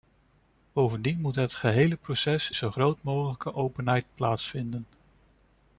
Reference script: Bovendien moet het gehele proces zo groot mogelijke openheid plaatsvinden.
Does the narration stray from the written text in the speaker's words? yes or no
no